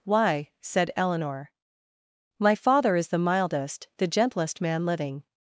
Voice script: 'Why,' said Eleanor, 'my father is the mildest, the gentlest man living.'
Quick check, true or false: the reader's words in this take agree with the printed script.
true